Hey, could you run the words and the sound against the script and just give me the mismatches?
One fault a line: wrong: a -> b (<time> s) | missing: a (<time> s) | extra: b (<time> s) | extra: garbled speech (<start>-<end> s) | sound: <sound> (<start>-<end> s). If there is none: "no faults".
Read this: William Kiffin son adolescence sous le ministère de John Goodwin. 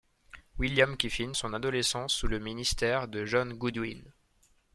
no faults